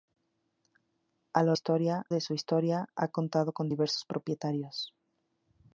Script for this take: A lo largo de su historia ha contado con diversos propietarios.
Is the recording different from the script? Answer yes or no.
yes